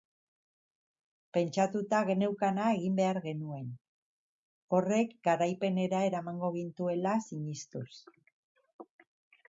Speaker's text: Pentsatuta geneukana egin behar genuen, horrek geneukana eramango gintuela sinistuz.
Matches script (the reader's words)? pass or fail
fail